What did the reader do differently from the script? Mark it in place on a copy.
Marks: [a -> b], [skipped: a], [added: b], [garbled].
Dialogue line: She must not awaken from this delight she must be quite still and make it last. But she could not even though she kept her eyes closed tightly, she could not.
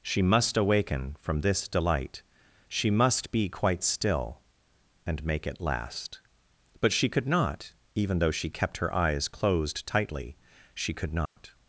She must [skipped: not] awaken from this delight she must be quite still and make it last. But she could not even though she kept her eyes closed tightly, she could not.